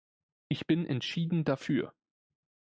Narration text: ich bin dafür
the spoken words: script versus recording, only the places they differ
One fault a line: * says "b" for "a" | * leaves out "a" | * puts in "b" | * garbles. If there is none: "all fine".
* puts in "entschieden"